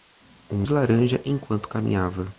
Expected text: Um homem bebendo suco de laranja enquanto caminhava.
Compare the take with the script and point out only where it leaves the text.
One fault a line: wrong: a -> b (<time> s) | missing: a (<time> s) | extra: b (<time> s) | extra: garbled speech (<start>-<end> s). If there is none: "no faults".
missing: homem bebendo suco (0.7 s)